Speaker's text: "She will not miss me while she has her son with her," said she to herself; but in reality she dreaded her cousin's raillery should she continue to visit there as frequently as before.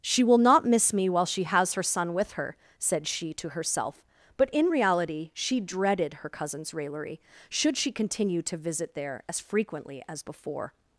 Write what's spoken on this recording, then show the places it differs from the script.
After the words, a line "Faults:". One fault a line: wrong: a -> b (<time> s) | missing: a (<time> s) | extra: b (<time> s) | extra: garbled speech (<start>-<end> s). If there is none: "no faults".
"She will not miss me while she has her son with her," said she to herself; but in reality she dreaded her cousin's raillery should she continue to visit there as frequently as before.
Faults:
no faults